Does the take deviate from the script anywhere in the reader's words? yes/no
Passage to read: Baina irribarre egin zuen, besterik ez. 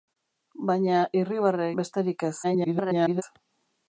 yes